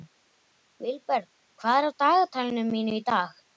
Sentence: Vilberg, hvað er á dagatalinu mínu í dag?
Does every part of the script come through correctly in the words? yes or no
yes